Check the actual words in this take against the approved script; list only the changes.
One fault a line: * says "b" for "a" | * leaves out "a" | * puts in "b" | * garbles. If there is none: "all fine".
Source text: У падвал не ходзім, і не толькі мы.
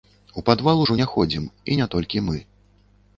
* puts in "ужо"